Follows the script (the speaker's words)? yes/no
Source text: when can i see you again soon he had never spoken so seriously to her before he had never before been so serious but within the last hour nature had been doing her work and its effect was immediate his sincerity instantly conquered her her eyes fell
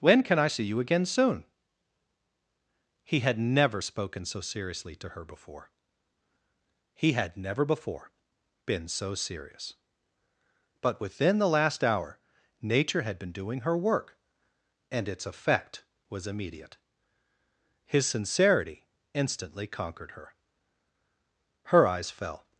yes